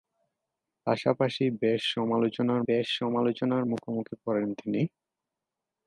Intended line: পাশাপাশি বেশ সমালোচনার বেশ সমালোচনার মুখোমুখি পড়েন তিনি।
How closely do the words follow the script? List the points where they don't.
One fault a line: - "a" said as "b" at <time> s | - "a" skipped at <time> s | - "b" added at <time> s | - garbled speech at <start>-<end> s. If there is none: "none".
none